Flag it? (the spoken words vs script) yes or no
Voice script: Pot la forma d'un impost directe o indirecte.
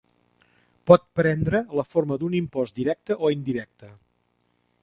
yes